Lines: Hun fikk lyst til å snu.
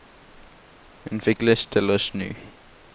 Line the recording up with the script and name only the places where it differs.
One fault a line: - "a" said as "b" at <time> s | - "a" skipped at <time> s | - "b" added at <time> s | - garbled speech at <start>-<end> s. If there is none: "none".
none